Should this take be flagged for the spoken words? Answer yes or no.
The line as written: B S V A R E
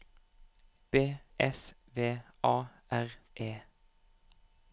no